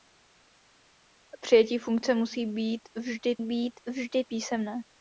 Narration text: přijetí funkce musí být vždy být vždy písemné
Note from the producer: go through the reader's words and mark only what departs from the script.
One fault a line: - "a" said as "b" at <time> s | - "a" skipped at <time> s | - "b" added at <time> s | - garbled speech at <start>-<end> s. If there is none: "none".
none